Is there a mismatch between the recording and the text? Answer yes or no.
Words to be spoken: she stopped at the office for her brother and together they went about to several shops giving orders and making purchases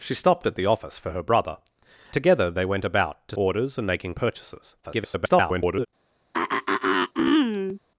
yes